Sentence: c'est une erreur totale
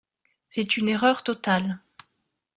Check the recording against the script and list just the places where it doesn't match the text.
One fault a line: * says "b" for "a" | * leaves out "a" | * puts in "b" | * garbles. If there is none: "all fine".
all fine